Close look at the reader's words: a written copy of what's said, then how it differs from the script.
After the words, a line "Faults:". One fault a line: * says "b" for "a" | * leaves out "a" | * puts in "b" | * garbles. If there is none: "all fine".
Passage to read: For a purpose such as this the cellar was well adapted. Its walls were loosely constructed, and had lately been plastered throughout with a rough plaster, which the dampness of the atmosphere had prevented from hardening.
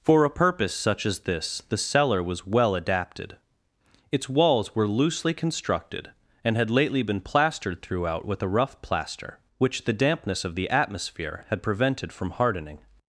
For a purpose such as this the cellar was well adapted. Its walls were loosely constructed, and had lately been plastered throughout with a rough plaster, which the dampness of the atmosphere had prevented from hardening.
Faults:
all fine